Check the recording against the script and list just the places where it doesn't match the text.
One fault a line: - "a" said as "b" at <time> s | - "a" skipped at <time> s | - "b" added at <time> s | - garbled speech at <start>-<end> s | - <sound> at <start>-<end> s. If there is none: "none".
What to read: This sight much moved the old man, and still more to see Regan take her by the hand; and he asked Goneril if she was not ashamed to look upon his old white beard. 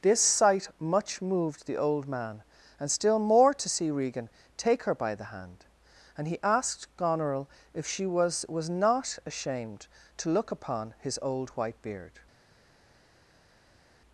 - "was" added at 8.5 s